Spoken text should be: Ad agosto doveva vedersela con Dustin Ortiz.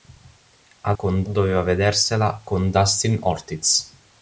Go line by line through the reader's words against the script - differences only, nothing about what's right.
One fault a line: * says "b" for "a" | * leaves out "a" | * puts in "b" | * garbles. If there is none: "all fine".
* says "con" for "agosto"